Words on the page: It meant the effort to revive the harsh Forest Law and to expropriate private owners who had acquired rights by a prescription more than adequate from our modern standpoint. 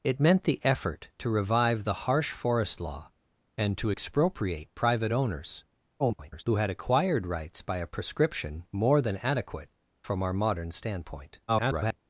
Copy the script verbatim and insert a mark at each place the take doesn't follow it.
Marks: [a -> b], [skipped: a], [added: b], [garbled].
It meant the effort to revive the harsh Forest Law and to expropriate private owners [garbled] who had acquired rights by a prescription more than adequate from our modern standpoint. [garbled]